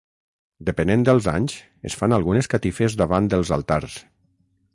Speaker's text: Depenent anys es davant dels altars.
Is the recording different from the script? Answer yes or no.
yes